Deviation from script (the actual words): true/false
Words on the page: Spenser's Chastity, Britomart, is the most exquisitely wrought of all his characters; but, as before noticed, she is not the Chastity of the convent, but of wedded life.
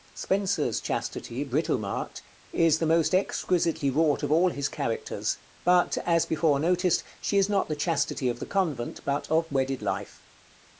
false